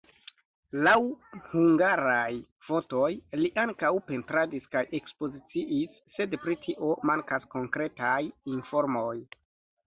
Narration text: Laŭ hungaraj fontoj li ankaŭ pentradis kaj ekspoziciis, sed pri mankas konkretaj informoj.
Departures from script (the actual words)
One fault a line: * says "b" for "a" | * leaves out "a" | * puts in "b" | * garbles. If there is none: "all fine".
* puts in "tio"